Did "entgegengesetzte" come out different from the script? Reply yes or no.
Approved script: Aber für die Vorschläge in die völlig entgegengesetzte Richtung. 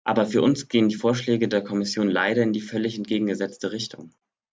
no